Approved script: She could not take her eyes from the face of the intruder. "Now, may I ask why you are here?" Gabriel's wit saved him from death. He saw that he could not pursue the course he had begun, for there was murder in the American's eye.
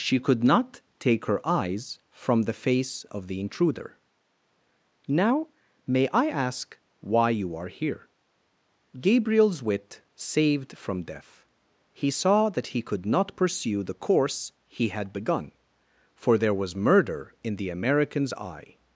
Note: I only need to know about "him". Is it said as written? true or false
false